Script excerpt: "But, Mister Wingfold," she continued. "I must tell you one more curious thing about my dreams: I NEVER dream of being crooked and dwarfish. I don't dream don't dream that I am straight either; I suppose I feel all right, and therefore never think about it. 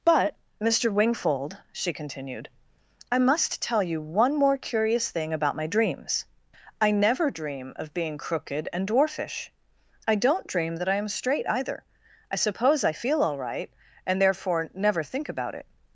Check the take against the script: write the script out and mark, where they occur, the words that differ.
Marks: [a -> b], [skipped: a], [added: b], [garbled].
"But, Mister Wingfold," she continued. "I must tell you one more curious thing about my dreams: I NEVER dream of being crooked and dwarfish. I don't dream [skipped: don't dream] that I am straight either; I suppose I feel all right, and therefore never think about it.